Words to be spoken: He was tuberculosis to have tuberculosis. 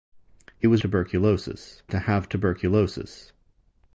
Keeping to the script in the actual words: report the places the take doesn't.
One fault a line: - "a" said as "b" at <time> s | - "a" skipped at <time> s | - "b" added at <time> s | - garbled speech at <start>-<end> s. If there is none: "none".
none